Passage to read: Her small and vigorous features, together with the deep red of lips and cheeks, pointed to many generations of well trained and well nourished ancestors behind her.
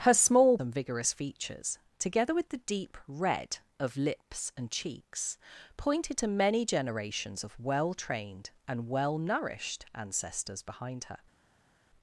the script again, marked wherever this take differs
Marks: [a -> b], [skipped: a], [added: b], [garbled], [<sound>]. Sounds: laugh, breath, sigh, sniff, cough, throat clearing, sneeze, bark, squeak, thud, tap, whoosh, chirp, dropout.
Her small and vigorous features, together with the deep red of lips and cheeks, pointed to many generations of well trained and well nourished ancestors behind her.